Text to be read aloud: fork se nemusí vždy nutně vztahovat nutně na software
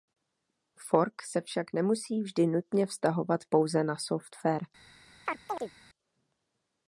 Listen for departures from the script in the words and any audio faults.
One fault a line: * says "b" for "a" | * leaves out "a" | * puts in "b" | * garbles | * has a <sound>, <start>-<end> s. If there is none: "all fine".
* puts in "však"
* says "pouze" for "nutně"
* has a chirp, 5.3-5.7 s